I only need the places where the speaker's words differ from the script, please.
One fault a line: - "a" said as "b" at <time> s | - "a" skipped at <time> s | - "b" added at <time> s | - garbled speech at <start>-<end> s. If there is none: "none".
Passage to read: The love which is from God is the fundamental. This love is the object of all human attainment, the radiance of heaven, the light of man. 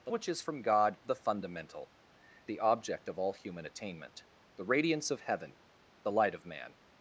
- "love" skipped at 0.1 s
- "is" skipped at 1.0 s
- "This love is" skipped at 1.9 s